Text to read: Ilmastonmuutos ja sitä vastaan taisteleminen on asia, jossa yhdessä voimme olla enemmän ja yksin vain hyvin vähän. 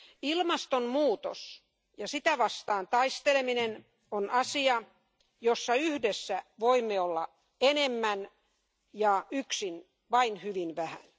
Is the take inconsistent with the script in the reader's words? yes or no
no